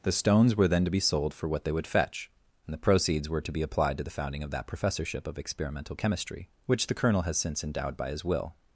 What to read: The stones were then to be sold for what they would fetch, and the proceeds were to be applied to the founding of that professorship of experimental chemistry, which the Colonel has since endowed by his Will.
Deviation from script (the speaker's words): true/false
false